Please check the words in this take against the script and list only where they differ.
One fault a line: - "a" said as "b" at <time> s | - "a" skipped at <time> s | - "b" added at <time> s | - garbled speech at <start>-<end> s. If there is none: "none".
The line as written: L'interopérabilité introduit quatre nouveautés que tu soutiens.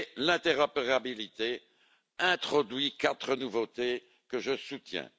- "tu" said as "je" at 4.4 s